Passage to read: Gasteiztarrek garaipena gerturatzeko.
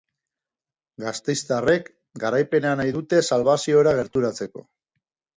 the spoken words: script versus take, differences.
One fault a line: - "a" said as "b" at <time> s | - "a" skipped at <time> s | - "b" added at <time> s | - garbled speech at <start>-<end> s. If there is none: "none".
- "nahi dute salbaziora" added at 2.8 s